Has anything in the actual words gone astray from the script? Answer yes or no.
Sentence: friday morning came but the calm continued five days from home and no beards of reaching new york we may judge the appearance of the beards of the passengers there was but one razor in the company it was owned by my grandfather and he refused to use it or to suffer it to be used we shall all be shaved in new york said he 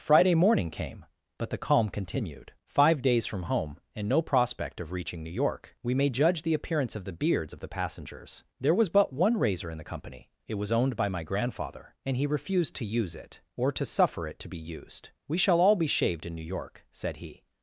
yes